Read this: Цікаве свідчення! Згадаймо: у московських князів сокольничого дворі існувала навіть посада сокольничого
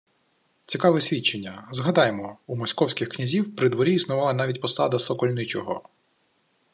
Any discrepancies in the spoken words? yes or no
yes